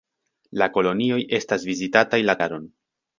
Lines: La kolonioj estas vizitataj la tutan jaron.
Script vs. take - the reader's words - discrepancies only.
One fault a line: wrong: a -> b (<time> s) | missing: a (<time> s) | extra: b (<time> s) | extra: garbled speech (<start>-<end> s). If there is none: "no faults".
missing: tutan (2.4 s)